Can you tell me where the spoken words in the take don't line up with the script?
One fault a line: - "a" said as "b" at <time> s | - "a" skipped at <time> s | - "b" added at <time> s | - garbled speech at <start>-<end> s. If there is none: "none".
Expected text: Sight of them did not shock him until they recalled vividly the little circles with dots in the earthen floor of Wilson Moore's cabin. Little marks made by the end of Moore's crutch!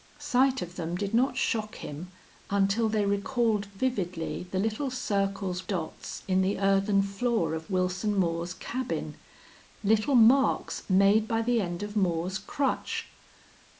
- "with" skipped at 5.7 s